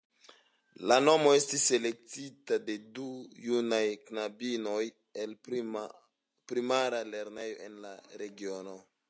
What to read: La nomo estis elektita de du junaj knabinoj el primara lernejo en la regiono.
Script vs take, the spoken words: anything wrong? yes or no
no